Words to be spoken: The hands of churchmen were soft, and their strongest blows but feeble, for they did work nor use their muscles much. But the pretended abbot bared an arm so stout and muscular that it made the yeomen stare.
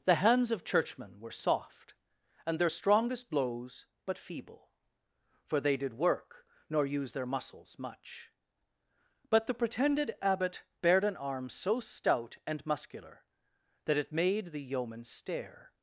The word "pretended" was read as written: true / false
true